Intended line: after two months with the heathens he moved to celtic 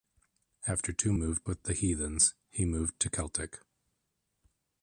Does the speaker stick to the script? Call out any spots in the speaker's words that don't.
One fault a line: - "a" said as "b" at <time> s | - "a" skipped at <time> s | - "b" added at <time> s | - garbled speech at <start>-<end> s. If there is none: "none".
- "months" said as "moved" at 1.1 s